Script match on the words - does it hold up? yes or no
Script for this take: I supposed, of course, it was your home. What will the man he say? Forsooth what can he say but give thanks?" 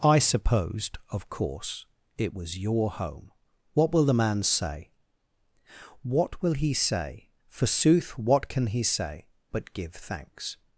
no